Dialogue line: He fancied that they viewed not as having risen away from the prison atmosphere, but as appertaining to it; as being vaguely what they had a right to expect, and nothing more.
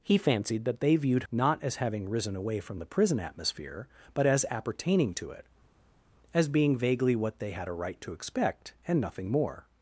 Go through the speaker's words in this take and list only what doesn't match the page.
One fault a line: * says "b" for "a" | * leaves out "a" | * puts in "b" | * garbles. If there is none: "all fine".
all fine